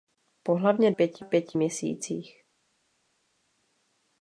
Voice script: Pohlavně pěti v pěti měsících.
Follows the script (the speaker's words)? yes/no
yes